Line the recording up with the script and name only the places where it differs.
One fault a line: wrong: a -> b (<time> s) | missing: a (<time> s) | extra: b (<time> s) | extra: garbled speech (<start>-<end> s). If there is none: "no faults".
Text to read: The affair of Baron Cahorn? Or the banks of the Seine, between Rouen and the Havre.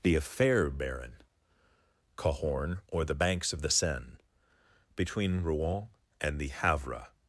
missing: of (0.7 s)